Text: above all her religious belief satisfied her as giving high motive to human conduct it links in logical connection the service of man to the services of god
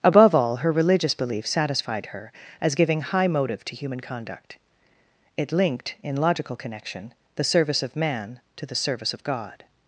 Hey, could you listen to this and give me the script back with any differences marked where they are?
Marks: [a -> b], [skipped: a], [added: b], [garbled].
above all her religious belief satisfied her as giving high motive to human conduct it [links -> linked] in logical connection the service of man to the [services -> service] of god